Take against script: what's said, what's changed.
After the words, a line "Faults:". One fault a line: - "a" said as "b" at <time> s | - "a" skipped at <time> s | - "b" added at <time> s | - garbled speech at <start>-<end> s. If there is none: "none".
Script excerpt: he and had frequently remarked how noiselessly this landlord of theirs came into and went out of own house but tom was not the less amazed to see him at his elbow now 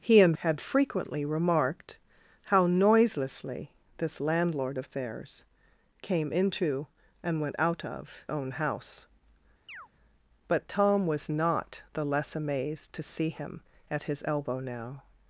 he and had frequently remarked how noiselessly this landlord of theirs came into and went out of own house but tom was not the less amazed to see him at his elbow now
Faults:
none